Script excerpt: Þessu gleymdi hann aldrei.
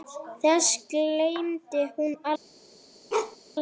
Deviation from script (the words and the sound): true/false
true